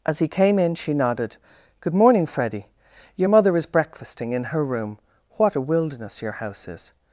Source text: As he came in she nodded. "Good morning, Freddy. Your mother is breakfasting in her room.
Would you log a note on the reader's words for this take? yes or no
yes